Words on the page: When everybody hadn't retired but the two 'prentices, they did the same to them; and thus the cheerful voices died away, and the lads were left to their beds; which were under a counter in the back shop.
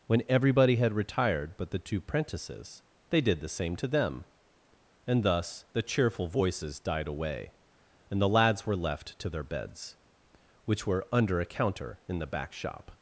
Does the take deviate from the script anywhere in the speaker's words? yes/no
yes